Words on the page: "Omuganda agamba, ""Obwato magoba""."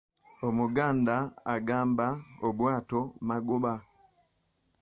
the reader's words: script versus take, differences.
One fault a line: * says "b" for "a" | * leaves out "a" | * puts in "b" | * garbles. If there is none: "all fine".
all fine